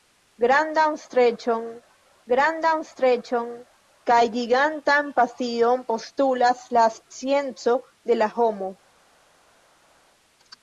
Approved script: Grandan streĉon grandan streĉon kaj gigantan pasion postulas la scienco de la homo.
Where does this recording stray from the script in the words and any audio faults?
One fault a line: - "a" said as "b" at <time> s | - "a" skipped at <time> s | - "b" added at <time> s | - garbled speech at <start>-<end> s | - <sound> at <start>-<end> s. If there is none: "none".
none